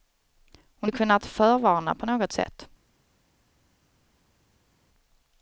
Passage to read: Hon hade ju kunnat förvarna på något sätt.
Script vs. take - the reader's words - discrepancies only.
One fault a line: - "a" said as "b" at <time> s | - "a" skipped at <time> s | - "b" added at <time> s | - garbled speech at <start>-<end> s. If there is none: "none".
- "hade" skipped at 0.9 s